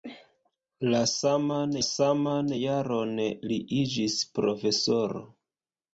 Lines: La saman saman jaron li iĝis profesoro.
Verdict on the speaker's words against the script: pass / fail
pass